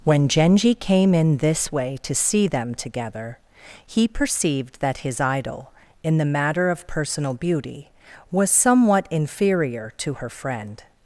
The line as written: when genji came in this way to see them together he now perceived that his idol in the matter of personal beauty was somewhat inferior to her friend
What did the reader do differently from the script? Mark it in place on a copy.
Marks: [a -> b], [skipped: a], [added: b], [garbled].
when genji came in this way to see them together he [skipped: now] perceived that his idol in the matter of personal beauty was somewhat inferior to her friend